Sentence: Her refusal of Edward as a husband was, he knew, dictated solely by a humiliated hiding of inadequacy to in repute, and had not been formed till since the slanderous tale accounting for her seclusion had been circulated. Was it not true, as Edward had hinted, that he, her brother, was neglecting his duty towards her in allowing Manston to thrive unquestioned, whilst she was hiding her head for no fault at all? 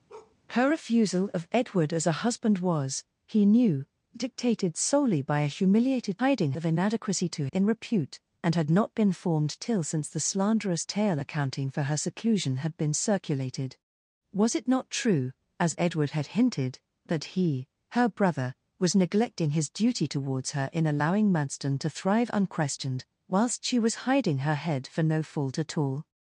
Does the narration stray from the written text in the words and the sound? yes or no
yes